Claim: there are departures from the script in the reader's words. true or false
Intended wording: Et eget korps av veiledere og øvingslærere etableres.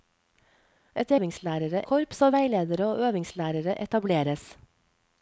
true